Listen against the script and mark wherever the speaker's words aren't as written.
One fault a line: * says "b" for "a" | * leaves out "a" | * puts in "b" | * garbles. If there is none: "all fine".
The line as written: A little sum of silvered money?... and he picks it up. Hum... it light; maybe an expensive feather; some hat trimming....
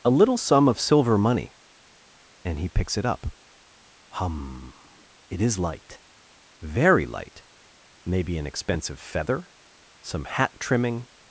* says "silver" for "silvered"
* puts in "is light very"